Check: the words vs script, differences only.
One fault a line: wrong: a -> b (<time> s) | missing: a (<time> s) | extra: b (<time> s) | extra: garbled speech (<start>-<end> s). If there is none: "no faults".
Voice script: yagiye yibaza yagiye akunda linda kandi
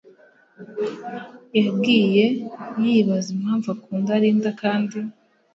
wrong: yagiye -> impamvu (3.4 s)